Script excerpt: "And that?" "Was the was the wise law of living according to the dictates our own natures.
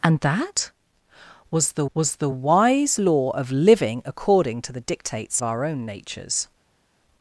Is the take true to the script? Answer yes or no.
yes